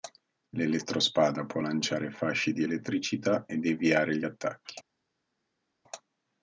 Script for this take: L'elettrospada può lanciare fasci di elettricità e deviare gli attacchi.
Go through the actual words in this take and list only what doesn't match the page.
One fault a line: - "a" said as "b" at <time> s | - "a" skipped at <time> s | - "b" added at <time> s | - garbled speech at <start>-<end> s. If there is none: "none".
none